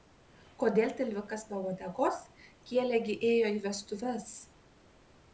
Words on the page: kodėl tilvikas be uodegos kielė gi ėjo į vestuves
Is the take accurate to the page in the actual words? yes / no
yes